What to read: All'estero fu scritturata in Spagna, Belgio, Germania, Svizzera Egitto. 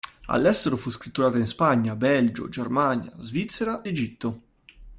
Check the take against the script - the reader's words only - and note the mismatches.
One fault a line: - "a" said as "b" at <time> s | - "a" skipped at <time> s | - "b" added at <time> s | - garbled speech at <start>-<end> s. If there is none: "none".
none